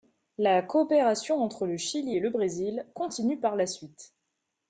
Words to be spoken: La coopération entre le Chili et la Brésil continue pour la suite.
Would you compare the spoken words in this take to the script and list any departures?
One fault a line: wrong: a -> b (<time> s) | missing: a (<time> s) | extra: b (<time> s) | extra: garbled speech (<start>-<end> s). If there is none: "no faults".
wrong: la -> le (2.2 s)
wrong: pour -> par (3.4 s)